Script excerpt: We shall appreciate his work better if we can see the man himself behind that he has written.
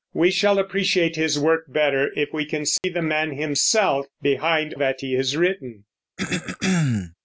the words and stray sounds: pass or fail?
fail